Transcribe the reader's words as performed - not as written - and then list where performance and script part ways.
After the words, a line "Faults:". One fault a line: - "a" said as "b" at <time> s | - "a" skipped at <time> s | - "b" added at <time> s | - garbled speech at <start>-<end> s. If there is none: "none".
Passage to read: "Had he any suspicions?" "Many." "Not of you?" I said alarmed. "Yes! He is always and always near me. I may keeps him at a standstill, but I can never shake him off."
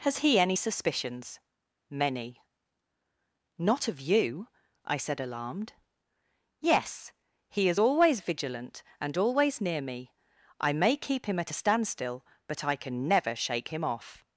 "Has he any suspicions?" "Many." "Not of you?" I said alarmed. "Yes! He is always vigilant and always near me. I may keep him at a standstill, but I can never shake him off."
Faults:
- "Had" said as "Has" at 0.0 s
- "vigilant" added at 8.2 s
- "keeps" said as "keep" at 11.0 s